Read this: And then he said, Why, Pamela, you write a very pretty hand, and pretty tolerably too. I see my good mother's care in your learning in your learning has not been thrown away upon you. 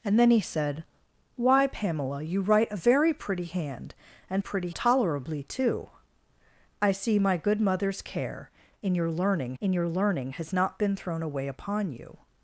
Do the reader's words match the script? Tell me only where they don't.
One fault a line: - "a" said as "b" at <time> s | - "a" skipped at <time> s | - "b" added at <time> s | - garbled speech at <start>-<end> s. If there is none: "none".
none